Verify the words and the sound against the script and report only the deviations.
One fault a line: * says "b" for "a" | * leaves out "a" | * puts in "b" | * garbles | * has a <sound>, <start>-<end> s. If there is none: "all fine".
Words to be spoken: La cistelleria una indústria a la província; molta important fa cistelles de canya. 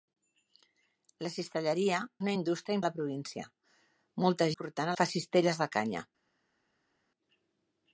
all fine